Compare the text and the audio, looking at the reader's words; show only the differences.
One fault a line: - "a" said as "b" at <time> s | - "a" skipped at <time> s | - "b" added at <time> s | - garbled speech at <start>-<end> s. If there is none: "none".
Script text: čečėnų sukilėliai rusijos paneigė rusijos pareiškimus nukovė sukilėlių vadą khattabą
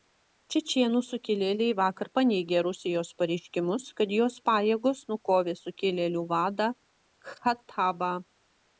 - "rusijos" said as "vakar" at 1.8 s
- "kad jos pajėgos" added at 4.0 s